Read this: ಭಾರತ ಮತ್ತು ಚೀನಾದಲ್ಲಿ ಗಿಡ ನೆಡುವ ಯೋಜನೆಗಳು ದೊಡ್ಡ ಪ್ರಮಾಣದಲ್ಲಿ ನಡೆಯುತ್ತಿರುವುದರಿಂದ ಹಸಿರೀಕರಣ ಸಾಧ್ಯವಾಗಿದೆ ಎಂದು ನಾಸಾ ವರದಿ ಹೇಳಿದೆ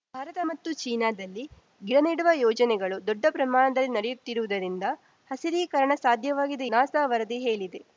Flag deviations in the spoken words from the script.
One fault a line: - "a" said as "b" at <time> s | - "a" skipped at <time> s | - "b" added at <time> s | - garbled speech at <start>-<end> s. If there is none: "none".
- "ಎಂದು" skipped at 6.7 s